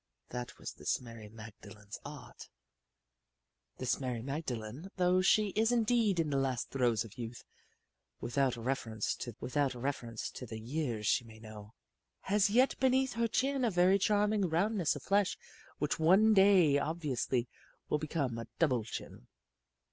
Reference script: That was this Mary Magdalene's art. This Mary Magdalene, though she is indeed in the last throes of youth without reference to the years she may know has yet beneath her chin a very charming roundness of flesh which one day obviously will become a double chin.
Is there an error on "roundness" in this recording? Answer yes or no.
no